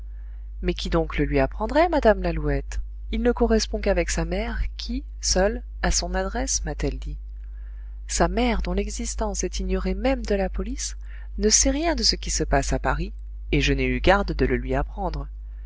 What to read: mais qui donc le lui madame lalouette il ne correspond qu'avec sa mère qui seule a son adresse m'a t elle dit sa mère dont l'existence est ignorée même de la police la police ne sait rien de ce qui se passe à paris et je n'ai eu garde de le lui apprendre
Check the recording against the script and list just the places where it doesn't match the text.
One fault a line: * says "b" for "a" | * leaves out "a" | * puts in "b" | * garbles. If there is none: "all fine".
* puts in "apprendrait"
* leaves out "la police"